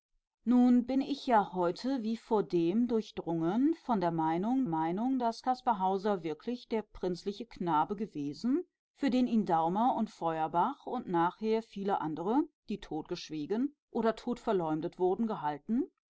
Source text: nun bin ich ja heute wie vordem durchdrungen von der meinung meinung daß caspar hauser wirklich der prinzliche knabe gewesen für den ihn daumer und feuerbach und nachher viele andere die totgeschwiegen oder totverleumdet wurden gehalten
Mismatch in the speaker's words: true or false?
false